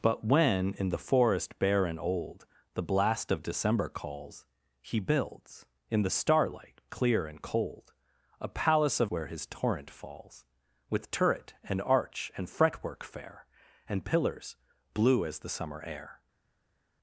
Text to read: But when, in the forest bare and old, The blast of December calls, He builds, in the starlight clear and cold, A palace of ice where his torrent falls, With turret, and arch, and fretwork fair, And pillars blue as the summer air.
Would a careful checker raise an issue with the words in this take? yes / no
yes